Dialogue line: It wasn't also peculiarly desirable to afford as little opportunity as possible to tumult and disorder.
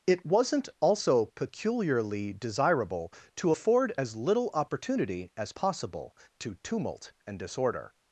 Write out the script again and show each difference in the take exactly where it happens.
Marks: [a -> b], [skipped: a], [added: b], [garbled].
It wasn't also peculiarly desirable to afford as little opportunity as possible to tumult and disorder.